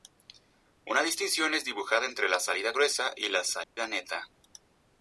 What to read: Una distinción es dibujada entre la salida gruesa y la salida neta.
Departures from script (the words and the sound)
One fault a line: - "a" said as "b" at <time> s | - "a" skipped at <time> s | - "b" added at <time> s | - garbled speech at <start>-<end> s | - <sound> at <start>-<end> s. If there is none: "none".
- dropout at 3.6-3.8 s